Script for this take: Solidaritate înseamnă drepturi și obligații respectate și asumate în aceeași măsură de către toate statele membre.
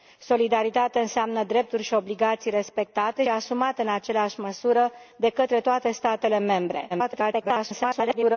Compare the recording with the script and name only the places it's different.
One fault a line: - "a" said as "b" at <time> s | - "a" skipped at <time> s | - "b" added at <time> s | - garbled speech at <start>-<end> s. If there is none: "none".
- "și" skipped at 3.2 s
- garbled speech at 6.9-8.4 s